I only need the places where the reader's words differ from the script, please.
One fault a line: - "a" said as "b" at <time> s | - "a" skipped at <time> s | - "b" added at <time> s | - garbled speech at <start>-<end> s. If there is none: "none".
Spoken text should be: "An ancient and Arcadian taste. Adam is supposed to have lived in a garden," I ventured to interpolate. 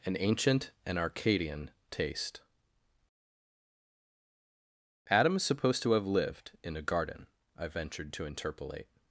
none